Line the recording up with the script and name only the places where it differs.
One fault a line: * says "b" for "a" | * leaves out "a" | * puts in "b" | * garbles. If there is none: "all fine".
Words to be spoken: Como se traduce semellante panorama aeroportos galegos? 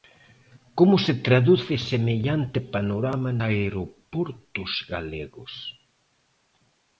all fine